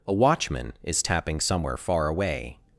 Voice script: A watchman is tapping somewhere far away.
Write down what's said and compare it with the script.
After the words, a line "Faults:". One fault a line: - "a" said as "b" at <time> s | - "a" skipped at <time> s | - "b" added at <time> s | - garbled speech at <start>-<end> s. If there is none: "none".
A watchman is tapping somewhere far away.
Faults:
none